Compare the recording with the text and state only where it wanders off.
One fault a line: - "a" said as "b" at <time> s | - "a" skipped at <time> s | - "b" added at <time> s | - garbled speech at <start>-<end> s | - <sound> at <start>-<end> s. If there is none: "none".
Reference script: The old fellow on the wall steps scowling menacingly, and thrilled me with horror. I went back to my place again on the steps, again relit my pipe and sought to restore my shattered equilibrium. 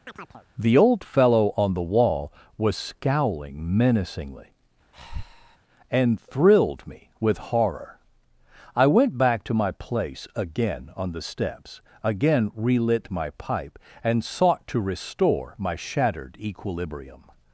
- chirp at 0.1-0.5 s
- "steps" said as "was" at 2.6 s
- breath at 4.9-5.6 s